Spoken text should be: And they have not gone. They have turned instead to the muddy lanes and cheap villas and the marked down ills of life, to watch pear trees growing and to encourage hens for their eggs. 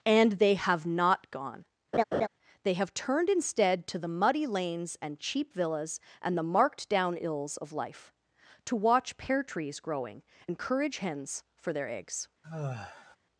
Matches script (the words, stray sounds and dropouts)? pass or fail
fail